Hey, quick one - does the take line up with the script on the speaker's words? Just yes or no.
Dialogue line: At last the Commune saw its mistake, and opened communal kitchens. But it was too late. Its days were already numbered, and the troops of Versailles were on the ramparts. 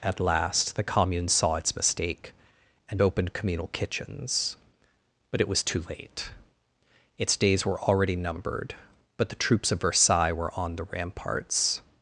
no